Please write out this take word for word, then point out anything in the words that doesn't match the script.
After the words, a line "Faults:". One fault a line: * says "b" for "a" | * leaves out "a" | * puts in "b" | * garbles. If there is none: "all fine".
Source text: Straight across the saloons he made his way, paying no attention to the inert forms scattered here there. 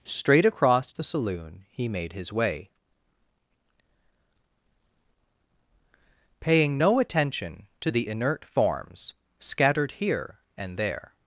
Straight across the saloon he made his way, paying no attention to the inert forms scattered here and there.
Faults:
* says "saloon" for "saloons"
* puts in "and"